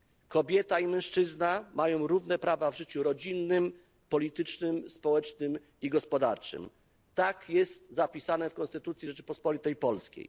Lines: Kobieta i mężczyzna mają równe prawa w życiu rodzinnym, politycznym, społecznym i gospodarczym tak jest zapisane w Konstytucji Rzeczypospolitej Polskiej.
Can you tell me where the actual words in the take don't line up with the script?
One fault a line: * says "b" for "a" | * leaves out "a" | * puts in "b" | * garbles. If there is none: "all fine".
all fine